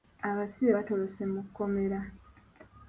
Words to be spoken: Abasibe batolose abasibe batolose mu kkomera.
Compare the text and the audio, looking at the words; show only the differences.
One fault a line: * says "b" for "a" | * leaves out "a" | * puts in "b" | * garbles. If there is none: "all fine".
* leaves out "abasibe batolose"